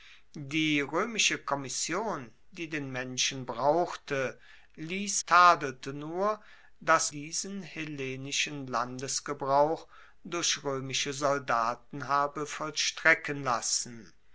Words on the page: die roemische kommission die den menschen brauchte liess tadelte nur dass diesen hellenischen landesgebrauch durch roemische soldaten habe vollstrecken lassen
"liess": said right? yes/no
yes